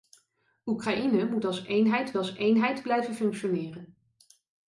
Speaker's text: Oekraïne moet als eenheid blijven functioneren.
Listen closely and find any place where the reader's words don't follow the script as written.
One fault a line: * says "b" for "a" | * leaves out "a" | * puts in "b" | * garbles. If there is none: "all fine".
* puts in "als eenheid"